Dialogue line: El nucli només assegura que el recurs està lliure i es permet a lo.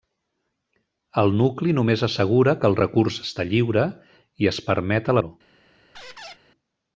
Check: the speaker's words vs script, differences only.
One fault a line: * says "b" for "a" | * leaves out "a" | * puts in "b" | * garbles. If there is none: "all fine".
all fine